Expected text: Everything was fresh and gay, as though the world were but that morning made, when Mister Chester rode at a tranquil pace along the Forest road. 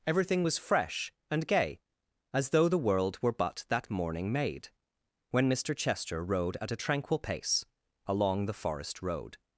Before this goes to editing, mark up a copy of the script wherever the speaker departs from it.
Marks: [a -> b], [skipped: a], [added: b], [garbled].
Everything was fresh and gay, as though the world were but that morning made, when Mister Chester rode at a tranquil pace along the Forest road.